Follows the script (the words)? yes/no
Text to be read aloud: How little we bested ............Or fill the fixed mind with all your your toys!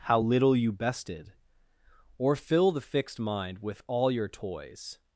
no